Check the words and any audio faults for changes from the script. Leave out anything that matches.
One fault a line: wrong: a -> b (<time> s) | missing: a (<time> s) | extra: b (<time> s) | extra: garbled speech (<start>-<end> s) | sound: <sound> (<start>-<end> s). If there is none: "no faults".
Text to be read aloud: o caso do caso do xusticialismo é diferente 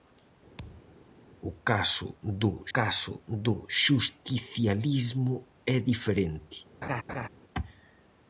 sound: thud (0.6-1.0 s)
sound: laugh (6.8-7.3 s)